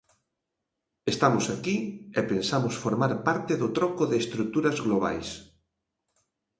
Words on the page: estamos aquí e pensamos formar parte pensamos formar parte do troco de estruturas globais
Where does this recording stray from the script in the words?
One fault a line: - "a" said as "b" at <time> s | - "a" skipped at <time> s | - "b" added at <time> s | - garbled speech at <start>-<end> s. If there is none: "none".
- "pensamos formar parte" skipped at 3.5 s